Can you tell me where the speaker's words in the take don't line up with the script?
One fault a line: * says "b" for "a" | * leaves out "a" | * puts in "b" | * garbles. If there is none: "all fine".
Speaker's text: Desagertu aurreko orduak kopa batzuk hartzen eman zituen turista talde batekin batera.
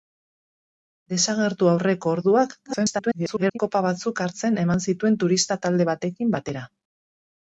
* garbles